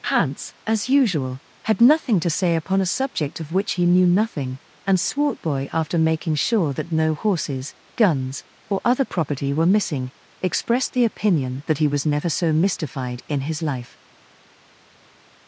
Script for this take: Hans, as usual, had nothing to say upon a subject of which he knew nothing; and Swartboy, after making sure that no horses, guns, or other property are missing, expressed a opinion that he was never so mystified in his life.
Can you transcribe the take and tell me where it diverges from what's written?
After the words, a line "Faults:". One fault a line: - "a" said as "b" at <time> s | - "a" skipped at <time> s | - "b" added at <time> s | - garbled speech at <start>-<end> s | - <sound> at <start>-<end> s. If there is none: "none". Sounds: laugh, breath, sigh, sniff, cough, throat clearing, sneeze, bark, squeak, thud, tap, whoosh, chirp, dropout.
Hans, as usual, had nothing to say upon a subject of which he knew nothing; and Swartboy, after making sure that no horses, guns, or other property were missing, expressed the opinion that he was never so mystified in his life.
Faults:
- "are" said as "were" at 9.5 s
- "a" said as "the" at 10.9 s